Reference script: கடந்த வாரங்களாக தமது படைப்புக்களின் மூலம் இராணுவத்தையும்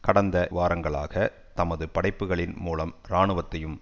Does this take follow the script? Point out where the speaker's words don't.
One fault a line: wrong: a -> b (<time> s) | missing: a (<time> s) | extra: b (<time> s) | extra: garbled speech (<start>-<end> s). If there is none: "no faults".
no faults